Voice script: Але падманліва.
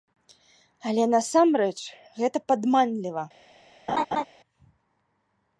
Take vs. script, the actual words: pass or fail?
fail